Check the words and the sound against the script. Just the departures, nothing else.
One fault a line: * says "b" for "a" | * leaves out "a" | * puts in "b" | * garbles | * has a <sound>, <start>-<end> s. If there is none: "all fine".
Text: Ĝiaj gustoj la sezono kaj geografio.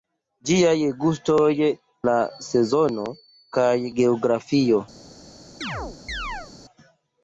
* has a chirp, 5.6-6.5 s